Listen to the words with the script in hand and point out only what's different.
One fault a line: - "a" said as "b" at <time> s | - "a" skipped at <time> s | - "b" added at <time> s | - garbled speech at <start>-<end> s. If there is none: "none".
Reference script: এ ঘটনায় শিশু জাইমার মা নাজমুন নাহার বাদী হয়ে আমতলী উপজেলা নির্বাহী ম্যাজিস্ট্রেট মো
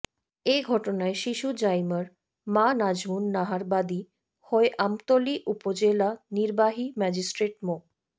none